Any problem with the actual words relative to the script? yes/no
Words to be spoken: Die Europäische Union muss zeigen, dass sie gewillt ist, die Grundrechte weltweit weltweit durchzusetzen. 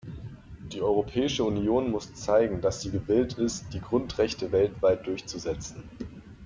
yes